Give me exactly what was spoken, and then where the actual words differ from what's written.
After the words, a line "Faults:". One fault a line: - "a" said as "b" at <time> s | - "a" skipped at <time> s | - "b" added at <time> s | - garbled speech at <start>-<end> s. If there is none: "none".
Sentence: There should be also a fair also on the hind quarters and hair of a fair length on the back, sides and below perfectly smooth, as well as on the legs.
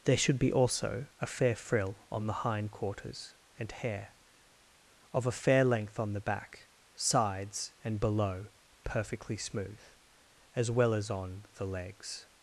There should be also a fair frill on the hind quarters and hair of a fair length on the back, sides and below perfectly smooth, as well as on the legs.
Faults:
- "also" said as "frill" at 1.6 s